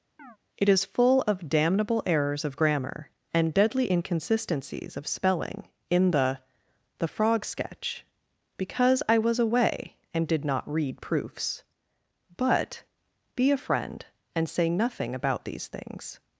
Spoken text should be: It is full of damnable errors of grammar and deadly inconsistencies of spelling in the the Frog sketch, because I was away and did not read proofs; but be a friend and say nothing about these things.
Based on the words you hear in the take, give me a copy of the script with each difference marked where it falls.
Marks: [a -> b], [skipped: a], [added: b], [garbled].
It is full of damnable errors of grammar and deadly inconsistencies of spelling in the the Frog sketch, because I was away and did not read proofs; but be a friend and say nothing about these things.